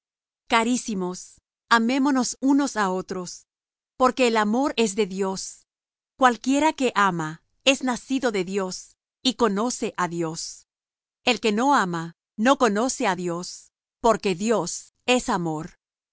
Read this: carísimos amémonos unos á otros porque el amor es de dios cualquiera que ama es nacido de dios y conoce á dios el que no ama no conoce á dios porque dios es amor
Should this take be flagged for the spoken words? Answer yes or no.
no